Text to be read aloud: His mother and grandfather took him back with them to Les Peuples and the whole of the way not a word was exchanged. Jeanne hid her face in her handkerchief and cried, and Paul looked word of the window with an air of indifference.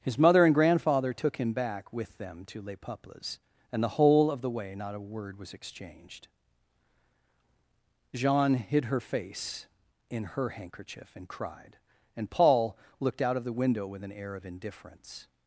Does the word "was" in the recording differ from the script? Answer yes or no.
no